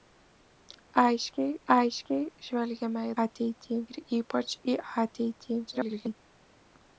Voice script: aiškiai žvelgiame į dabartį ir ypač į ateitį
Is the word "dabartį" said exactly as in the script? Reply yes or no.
no